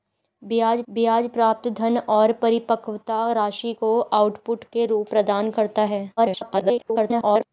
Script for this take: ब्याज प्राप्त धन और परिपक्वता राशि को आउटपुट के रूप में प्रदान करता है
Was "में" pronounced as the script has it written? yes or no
no